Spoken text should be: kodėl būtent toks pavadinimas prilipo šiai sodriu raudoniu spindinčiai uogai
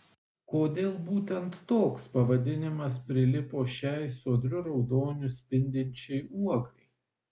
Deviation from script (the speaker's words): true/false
false